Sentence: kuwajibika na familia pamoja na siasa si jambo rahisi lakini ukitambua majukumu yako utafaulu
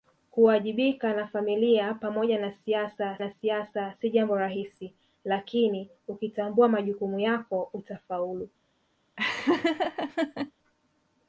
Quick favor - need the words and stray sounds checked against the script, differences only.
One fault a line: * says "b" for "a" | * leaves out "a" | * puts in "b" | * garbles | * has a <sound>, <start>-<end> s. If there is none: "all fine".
* puts in "na siasa"
* has a laugh, 9.2-10.5 s